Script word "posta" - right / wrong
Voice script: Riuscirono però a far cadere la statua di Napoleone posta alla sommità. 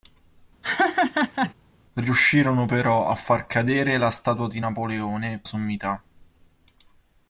wrong